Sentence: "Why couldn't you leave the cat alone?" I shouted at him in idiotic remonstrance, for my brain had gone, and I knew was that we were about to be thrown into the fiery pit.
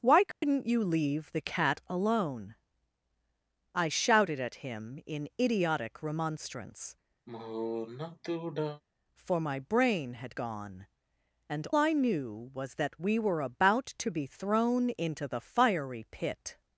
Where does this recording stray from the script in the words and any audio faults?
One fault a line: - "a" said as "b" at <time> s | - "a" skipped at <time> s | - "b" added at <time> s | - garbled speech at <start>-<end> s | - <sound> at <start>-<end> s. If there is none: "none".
- dropout at 0.3-0.4 s
- sigh at 7.3-8.8 s